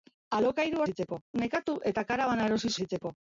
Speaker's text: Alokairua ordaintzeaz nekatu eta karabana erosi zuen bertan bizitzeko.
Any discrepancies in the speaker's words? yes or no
yes